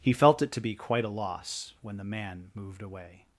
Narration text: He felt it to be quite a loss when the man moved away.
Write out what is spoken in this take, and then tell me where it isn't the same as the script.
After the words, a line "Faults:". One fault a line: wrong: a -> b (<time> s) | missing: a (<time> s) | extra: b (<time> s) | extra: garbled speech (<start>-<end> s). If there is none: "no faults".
He felt it to be quite a loss when the man moved away.
Faults:
no faults